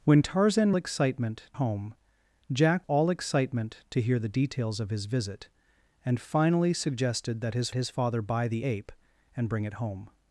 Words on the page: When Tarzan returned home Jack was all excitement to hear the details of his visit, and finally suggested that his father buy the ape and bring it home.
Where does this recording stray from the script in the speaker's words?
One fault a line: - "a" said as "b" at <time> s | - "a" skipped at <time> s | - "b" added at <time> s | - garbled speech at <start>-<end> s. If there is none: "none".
- "returned" said as "excitement" at 0.8 s
- "was" skipped at 2.9 s
- "his" added at 7.7 s